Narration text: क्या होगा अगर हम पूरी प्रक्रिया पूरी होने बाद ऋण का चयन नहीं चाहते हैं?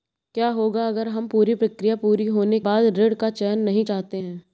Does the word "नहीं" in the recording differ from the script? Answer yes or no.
no